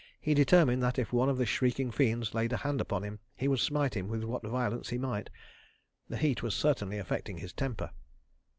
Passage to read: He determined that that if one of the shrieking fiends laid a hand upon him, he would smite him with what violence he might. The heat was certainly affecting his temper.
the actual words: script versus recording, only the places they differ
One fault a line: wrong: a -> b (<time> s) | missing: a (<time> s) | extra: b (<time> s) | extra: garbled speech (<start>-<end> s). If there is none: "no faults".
missing: that (1.0 s)